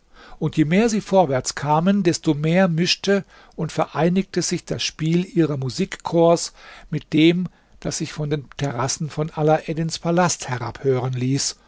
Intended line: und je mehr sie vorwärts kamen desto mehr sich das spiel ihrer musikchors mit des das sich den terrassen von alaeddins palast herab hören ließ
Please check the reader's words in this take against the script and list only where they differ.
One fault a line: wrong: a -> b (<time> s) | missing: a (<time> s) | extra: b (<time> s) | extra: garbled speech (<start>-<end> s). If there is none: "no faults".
extra: mischte und vereinigte (2.7 s)
wrong: des -> dem (7.1 s)
extra: von (8.1 s)